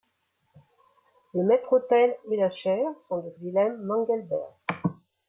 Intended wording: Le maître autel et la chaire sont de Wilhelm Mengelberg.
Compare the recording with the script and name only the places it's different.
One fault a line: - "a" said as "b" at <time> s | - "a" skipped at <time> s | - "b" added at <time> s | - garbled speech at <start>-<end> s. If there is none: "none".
none